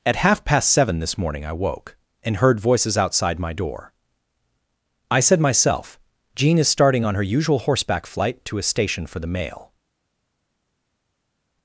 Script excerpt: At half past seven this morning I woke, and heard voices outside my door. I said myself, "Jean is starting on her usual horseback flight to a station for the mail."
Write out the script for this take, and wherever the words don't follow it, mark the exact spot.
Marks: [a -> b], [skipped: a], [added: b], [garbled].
At half past seven this morning I woke, and heard voices outside my door. I said myself, "Jean is starting on her usual horseback flight to a station for the mail."